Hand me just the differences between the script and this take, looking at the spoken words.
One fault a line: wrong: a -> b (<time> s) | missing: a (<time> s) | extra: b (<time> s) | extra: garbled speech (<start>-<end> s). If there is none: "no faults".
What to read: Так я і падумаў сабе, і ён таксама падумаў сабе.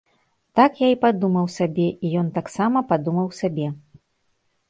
no faults